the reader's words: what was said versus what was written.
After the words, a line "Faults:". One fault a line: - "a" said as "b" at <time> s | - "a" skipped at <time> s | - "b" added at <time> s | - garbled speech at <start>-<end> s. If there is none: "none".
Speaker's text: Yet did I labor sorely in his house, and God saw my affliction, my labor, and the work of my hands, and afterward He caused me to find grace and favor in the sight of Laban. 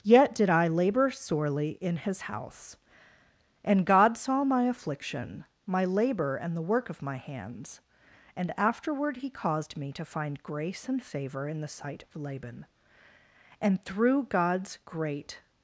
Yet did I labor sorely in his house, and God saw my affliction, my labor, and the work of my hands, and afterward He caused me to find grace and favor in the sight of Laban. And through God's great
Faults:
- "And through God's great" added at 13.6 s